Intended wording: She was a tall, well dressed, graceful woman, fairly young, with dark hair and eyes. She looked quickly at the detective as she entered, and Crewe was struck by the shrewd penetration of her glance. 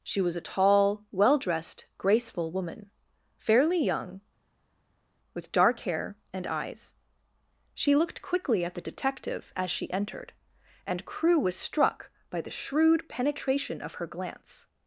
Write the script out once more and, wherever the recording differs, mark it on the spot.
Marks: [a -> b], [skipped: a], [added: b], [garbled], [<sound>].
She was a tall, well dressed, graceful woman, fairly young, with dark hair and eyes. She looked quickly at the detective as she entered, and Crewe was struck by the shrewd penetration of her glance.